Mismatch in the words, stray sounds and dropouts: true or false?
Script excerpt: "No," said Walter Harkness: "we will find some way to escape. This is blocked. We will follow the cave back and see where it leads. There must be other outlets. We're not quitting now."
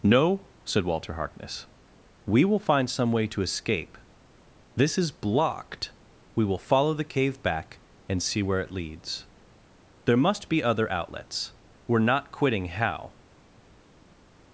true